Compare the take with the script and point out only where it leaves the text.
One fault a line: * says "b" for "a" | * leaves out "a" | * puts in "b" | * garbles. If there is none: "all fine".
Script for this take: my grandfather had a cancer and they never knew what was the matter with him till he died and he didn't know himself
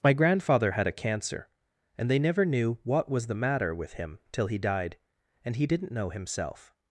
all fine